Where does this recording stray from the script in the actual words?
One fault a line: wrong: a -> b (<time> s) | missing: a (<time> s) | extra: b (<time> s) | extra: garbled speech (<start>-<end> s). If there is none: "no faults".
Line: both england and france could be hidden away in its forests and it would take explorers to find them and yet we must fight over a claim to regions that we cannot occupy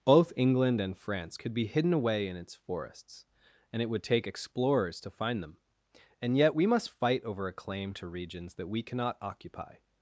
no faults